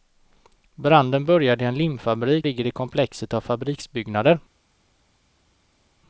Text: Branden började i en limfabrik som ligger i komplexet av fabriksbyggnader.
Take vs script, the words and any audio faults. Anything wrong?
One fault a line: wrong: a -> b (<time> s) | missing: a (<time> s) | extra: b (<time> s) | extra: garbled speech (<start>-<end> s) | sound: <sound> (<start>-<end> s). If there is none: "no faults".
missing: som (2.5 s)